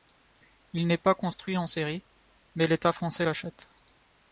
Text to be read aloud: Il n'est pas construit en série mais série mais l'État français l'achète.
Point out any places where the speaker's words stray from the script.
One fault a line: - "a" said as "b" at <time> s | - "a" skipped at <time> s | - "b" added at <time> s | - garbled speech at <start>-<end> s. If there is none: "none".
- "série mais" skipped at 2.6 s